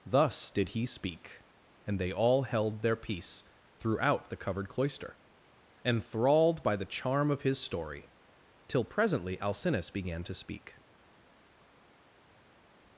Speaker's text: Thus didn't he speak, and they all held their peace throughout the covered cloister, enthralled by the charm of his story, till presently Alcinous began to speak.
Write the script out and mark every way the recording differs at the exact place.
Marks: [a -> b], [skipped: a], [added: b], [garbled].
Thus [didn't -> did] he speak, and they all held their peace throughout the covered cloister, enthralled by the charm of his story, till presently Alcinous began to speak.